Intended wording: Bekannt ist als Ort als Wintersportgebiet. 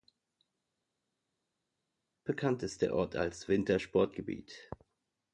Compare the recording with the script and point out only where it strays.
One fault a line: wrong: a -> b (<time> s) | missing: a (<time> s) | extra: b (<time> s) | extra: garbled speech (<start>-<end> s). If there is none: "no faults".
wrong: als -> der (2.8 s)